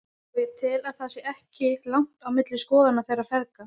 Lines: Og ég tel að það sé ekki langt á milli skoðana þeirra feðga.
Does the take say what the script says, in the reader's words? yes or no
yes